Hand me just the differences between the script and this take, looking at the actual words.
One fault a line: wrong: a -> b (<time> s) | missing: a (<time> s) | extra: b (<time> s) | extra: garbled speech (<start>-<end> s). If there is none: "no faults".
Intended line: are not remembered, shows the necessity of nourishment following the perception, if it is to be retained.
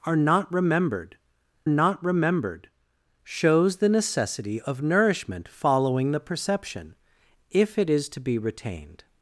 extra: not remembered (1.7 s)